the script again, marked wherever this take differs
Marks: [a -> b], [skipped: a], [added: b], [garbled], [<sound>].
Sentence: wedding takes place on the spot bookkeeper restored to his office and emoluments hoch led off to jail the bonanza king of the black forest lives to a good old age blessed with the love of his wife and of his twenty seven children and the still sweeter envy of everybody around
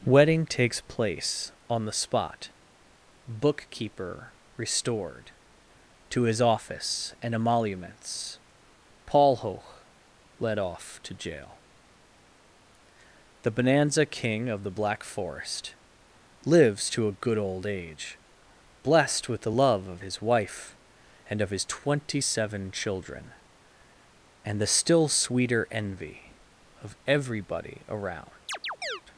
wedding takes place on the spot bookkeeper restored to his office and emoluments [added: paul] hoch led off to jail the bonanza king of the black forest lives to a good old age blessed with the love of his wife and of his twenty seven children and the still sweeter envy of everybody around [chirp]